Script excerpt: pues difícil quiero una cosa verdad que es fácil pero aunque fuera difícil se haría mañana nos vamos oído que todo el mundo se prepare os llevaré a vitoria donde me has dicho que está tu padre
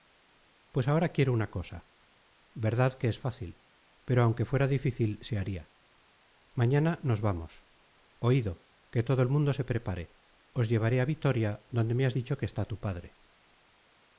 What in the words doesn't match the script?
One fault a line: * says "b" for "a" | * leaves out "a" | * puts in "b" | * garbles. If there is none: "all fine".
* says "ahora" for "difícil"